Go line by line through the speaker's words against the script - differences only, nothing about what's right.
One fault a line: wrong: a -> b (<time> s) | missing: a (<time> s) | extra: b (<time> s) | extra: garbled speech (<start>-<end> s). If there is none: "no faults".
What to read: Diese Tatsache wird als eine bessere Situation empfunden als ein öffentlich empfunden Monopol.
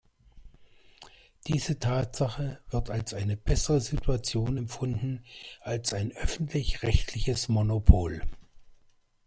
wrong: empfunden -> rechtliches (6.8 s)